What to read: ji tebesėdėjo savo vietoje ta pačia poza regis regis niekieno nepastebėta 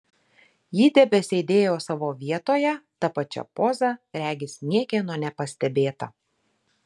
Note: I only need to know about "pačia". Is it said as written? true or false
true